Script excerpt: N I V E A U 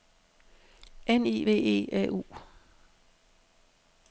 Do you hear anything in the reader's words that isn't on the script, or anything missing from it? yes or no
no